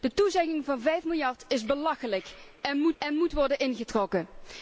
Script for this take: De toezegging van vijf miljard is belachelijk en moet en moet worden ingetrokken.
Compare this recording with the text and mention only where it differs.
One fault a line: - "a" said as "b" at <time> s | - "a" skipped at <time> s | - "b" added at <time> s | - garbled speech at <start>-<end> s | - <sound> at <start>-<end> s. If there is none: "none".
none